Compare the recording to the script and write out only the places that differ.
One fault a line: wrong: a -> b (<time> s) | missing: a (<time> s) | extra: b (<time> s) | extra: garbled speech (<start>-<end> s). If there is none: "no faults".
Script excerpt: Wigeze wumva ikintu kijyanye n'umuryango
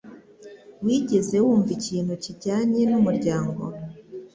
no faults